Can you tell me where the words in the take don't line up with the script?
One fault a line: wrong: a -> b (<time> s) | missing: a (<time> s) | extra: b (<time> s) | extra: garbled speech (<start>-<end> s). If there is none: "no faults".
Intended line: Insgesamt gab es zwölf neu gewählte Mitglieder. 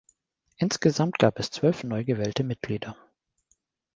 no faults